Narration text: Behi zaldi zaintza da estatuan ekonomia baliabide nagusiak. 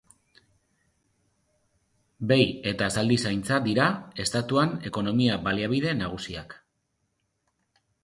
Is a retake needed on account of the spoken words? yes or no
yes